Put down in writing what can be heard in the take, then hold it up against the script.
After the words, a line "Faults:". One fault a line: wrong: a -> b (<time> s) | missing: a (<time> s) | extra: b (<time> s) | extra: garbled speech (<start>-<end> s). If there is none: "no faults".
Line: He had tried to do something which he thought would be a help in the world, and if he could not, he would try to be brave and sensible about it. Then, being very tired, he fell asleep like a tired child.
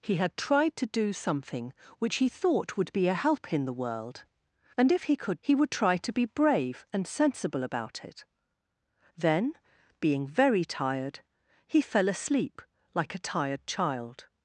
He had tried to do something which he thought would be a help in the world, and if he could he would try to be brave and sensible about it. Then, being very tired, he fell asleep like a tired child.
Faults:
missing: not (5.4 s)